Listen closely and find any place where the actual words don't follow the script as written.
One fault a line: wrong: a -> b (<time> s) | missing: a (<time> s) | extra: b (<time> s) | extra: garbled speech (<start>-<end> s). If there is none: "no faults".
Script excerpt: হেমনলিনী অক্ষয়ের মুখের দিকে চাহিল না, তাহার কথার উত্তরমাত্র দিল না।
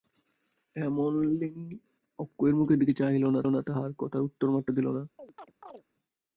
extra: না (3.5 s)